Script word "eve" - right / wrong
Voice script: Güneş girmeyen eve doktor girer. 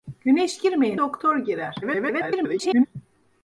wrong